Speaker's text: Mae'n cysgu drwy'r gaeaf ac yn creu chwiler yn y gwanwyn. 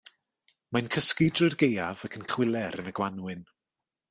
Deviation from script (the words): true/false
true